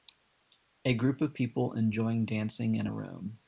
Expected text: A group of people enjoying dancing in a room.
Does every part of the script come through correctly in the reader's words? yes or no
yes